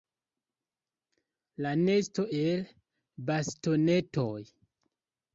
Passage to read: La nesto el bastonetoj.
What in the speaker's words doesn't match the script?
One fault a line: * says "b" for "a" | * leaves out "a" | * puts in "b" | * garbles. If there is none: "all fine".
all fine